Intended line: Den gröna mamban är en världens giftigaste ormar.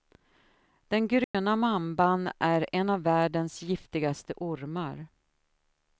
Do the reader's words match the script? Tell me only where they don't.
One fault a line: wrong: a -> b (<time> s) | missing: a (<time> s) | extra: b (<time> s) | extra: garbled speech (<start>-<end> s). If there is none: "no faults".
extra: av (2.9 s)